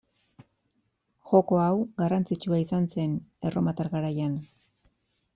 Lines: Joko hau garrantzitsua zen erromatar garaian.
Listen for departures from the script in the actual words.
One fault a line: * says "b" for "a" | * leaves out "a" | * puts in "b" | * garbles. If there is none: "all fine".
* puts in "izan"